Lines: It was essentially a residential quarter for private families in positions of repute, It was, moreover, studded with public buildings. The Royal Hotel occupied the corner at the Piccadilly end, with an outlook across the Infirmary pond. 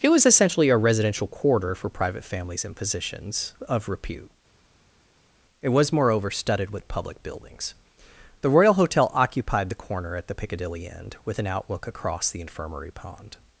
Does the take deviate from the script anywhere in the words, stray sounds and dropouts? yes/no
no